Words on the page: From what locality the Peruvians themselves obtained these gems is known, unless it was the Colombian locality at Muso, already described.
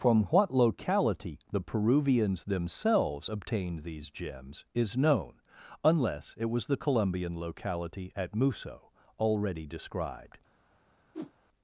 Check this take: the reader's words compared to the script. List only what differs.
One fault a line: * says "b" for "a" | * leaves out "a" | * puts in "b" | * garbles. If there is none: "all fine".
all fine